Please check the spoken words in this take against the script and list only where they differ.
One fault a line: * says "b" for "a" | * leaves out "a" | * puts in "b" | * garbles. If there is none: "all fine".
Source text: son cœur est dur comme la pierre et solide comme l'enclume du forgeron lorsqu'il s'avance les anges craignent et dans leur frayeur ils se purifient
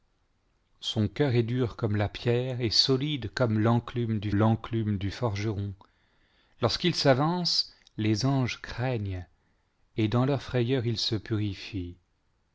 * puts in "l'enclume du"